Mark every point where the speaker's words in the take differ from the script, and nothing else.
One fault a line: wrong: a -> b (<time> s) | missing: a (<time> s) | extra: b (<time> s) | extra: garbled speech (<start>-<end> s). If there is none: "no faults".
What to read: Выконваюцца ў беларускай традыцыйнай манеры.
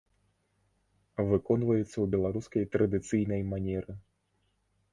no faults